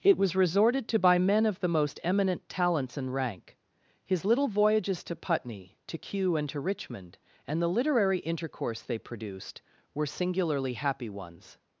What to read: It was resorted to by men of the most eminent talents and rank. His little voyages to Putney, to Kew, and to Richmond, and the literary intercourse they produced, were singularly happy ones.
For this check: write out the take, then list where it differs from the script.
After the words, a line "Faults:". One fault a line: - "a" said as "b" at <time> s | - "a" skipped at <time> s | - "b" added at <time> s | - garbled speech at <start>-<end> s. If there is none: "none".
It was resorted to by men of the most eminent talents and rank. His little voyages to Putney, to Kew, and to Richmond, and the literary intercourse they produced, were singularly happy ones.
Faults:
none